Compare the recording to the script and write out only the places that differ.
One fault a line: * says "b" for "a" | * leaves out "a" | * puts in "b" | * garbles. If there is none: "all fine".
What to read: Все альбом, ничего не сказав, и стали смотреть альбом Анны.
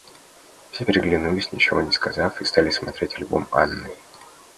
* says "переглянулись" for "альбом"